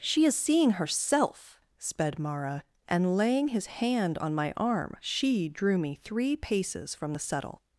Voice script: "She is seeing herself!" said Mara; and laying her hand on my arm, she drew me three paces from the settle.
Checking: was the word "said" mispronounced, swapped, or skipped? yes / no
yes